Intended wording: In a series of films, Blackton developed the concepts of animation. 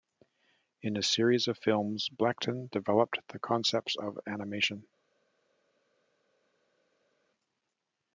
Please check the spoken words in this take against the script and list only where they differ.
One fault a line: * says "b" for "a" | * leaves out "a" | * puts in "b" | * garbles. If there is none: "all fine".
all fine